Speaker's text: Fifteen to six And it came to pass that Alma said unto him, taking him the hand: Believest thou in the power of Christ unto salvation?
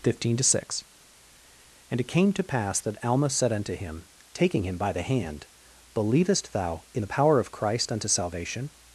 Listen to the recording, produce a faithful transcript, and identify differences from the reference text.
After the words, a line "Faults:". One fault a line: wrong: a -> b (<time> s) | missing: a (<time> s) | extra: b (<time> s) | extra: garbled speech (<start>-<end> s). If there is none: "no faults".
Fifteen to six And it came to pass that Alma said unto him, taking him by the hand: Believest thou in the power of Christ unto salvation?
Faults:
extra: by (4.8 s)